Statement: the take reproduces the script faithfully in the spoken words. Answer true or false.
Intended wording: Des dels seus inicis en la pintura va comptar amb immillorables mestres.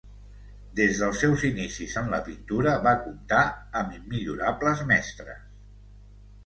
true